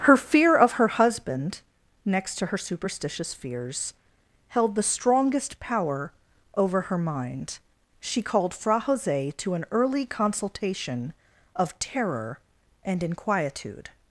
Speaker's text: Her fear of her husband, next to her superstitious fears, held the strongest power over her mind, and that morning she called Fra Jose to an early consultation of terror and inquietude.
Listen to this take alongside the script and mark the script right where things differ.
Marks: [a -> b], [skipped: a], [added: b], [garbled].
Her fear of her husband, next to her superstitious fears, held the strongest power over her mind, [skipped: and that morning] she called Fra Jose to an early consultation of terror and inquietude.